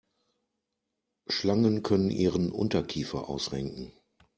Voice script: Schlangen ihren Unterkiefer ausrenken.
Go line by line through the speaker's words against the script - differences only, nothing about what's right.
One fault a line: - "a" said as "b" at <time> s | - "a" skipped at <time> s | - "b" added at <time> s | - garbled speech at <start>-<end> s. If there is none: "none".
- "können" added at 1.8 s